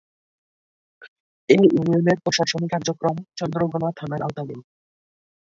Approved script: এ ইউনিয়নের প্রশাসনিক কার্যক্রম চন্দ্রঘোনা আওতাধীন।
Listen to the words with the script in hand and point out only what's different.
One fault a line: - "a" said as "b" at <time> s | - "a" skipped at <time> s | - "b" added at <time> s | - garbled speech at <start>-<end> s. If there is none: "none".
- "থানার" added at 4.0 s